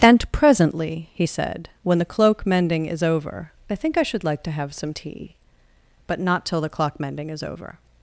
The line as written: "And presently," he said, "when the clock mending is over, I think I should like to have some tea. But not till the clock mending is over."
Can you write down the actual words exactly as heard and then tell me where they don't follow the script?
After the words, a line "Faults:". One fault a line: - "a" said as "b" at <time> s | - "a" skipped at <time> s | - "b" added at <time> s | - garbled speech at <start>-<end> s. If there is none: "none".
"And presently," he said, "when the cloak mending is over, I think I should like to have some tea. But not till the clock mending is over."
Faults:
- "clock" said as "cloak" at 2.0 s